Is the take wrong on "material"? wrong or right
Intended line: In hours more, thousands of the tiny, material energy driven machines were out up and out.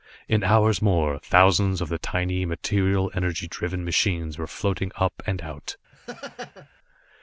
right